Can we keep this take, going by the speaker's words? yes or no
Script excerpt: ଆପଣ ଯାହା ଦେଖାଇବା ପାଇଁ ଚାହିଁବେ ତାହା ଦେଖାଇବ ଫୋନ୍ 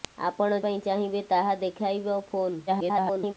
no